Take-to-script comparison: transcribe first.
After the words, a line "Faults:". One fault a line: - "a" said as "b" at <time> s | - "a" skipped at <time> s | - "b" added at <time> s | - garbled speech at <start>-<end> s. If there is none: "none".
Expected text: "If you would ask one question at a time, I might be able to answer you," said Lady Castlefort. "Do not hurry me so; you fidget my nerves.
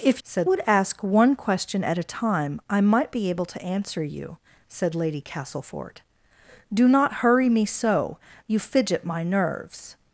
"If said would ask one question at a time, I might be able to answer you," said Lady Castlefort. "Do not hurry me so; you fidget my nerves.
Faults:
- "you" said as "said" at 0.2 s